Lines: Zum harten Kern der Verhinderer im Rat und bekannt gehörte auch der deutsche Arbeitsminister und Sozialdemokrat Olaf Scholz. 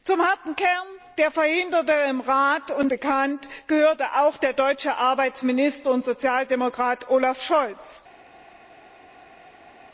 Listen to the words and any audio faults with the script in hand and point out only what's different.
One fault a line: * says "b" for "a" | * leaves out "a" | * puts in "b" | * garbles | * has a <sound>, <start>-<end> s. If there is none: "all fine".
all fine